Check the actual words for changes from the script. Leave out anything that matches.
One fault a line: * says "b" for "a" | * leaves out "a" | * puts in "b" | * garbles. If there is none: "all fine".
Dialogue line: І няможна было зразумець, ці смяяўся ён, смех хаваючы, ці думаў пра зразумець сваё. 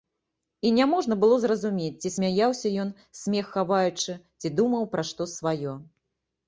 * says "што" for "зразумець"